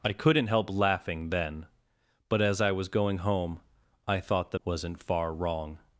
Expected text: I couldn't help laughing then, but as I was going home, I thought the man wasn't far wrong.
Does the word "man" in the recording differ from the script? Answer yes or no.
yes